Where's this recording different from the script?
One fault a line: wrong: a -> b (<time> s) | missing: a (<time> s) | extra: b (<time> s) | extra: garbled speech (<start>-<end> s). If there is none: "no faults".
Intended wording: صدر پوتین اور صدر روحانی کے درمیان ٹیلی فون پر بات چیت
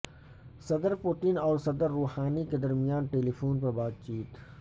no faults